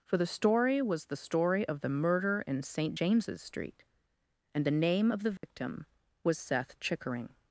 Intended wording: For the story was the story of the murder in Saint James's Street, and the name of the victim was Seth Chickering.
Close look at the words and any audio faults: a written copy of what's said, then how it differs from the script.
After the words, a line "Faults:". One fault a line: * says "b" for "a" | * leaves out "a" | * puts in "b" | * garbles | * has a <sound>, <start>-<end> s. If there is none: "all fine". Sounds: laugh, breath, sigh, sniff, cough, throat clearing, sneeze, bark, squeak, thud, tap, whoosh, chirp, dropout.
For the story was the story of the murder in Saint James's Street, and the name of the victim was Seth Chickering.
Faults:
* has a dropout, 5.4-5.4 s